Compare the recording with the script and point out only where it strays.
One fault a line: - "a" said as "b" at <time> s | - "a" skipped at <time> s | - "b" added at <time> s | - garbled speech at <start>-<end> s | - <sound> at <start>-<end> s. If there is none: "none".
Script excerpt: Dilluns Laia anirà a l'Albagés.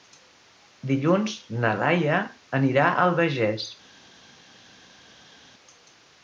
- "na" added at 1.6 s